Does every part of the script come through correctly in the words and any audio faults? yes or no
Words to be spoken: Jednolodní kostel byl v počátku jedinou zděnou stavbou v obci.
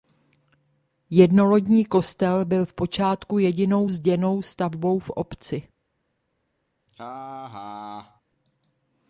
no